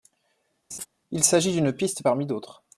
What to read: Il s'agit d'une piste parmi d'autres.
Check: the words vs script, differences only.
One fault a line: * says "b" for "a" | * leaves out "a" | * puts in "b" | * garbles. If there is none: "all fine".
all fine